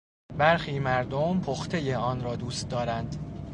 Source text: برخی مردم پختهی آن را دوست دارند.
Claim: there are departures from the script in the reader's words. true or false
false